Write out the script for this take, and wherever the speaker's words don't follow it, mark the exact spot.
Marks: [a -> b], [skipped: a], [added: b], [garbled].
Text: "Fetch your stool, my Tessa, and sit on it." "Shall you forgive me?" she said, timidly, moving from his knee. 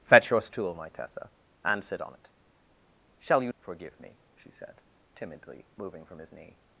"Fetch your stool, my Tessa, and sit on it." "Shall you forgive me?" she said, timidly, moving from his knee.